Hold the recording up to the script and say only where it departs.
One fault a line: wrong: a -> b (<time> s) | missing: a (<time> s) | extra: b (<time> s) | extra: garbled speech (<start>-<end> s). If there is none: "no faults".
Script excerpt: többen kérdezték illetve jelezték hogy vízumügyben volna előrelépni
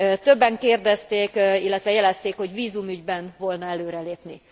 no faults